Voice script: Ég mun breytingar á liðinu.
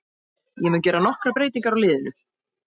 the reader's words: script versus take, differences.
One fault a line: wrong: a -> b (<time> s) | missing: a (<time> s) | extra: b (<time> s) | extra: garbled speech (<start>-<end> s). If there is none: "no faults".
extra: gera nokkrar (0.9 s)